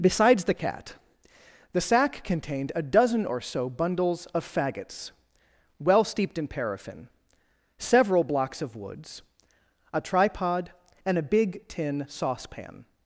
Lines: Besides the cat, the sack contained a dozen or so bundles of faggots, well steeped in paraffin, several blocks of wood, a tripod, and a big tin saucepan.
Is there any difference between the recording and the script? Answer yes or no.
yes